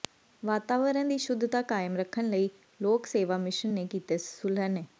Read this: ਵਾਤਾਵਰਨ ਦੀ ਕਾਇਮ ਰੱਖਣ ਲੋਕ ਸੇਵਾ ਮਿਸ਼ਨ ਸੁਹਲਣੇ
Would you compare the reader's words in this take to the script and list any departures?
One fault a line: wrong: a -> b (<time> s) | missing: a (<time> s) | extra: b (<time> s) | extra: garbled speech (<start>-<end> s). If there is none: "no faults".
extra: ਸ਼ੁੱਧਤਾ (1.2 s)
extra: ਲਈ (2.3 s)
extra: ਨੇ ਕੀਤੇ (3.7 s)